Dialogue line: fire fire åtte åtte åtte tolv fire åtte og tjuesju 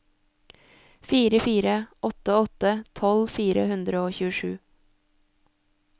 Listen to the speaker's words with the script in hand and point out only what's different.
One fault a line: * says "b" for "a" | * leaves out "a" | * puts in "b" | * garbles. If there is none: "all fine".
* leaves out "åtte"
* says "hundre" for "åtte"